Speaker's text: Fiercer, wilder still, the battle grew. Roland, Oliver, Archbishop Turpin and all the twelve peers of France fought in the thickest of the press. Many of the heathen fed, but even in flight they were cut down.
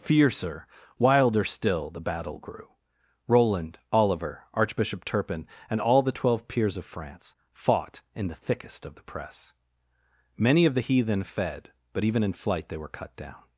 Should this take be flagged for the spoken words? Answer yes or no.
no